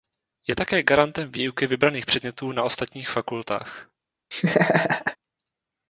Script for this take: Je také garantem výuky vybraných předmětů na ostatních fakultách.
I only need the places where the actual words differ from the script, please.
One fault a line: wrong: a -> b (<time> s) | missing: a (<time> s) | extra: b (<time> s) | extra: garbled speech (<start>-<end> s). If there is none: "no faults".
no faults